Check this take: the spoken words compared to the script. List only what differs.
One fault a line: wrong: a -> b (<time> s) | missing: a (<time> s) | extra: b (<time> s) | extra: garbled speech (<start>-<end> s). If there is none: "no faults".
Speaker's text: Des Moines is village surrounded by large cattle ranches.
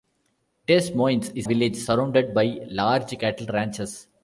no faults